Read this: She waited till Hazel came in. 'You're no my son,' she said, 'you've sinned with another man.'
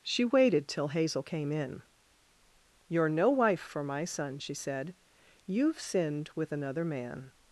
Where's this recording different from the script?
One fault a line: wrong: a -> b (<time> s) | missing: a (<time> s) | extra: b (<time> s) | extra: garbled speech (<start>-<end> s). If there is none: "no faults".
extra: wife for (3.3 s)